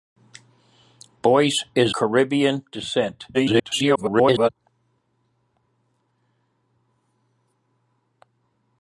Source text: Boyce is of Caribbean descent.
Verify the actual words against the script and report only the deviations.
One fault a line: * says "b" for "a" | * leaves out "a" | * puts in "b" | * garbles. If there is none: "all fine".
* leaves out "of"
* garbles